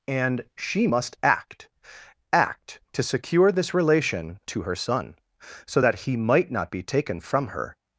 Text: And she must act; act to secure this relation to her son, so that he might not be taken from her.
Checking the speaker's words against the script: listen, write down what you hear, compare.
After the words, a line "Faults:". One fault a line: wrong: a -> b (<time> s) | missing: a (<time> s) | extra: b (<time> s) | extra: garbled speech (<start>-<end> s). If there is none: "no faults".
And she must act; act to secure this relation to her son, so that he might not be taken from her.
Faults:
no faults